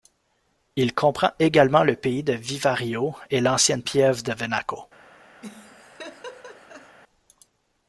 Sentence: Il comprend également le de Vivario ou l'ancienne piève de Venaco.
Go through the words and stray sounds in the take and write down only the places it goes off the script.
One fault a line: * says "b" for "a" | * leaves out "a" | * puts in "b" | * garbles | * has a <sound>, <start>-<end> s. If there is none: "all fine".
* puts in "pays"
* says "et" for "ou"
* has a laugh, 5.4-7.0 s